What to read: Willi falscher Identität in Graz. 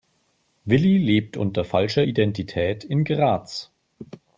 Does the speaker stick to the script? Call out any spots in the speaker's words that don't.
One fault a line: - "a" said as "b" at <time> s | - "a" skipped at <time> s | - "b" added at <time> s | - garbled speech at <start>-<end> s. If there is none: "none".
- "lebt unter" added at 1.0 s